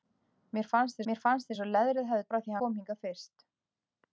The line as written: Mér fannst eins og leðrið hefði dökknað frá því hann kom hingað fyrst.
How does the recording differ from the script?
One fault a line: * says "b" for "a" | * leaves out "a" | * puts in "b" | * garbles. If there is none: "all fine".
* puts in "mér fannst"
* leaves out "dökknað"
* leaves out "hann"